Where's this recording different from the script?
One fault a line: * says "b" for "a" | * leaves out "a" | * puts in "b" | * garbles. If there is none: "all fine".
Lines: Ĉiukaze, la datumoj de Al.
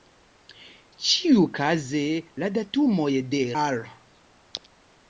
all fine